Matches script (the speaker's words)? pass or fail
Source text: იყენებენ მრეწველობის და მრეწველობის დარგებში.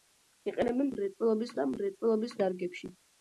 pass